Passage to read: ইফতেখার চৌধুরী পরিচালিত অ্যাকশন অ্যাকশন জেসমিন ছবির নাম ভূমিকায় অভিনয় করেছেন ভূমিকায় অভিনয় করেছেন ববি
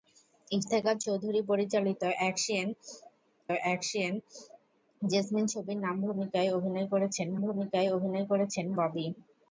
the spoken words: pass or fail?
pass